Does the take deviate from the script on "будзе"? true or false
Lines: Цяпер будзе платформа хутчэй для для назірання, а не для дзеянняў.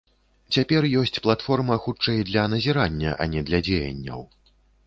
true